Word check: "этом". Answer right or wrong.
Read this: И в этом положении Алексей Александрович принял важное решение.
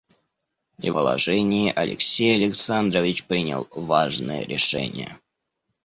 wrong